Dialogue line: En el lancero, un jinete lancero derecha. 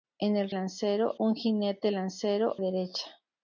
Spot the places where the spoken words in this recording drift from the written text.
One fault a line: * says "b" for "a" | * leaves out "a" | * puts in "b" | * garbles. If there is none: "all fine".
all fine